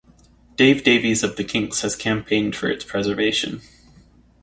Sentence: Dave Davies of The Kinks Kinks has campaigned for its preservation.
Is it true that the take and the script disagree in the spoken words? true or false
true